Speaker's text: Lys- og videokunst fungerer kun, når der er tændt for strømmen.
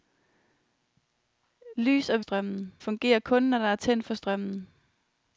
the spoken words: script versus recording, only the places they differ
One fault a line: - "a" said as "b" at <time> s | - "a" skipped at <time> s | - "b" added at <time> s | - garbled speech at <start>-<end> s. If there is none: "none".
- "videokunst" said as "strømmen" at 2.2 s